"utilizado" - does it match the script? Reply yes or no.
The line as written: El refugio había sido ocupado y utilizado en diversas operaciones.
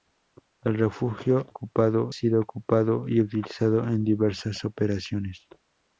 yes